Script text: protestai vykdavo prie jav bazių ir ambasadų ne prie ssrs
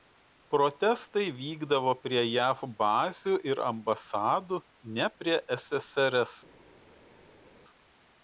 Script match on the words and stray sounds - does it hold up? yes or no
yes